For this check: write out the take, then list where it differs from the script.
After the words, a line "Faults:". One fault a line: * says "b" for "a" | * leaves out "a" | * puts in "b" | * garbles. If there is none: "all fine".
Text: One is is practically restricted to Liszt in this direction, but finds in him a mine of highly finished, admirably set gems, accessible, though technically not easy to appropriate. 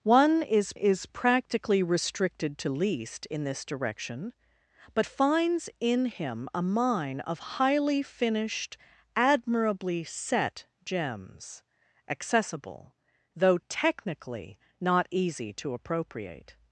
One is is practically restricted to Liszt in this direction, but finds in him a mine of highly finished, admirably set gems, accessible, though technically not easy to appropriate.
Faults:
all fine